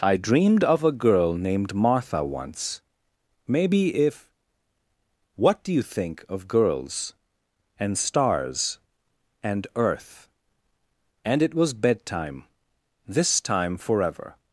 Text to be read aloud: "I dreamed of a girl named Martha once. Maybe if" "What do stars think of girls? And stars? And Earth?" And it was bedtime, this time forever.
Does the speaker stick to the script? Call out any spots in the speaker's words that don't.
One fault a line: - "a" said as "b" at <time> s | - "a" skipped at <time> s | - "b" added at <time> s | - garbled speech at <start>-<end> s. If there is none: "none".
- "stars" said as "you" at 5.7 s